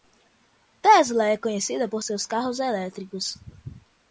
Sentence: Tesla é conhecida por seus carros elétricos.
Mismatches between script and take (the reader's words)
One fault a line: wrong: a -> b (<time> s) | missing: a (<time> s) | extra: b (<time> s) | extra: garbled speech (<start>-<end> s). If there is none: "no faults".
no faults